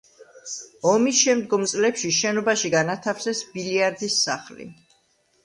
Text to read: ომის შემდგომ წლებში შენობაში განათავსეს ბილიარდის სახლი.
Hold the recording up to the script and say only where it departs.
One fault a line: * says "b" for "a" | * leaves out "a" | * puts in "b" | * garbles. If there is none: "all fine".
all fine